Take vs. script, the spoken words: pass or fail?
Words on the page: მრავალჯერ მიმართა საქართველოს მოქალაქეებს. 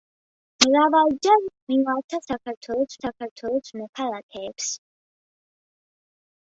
fail